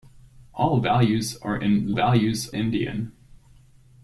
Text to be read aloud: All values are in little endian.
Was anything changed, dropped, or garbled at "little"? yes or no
yes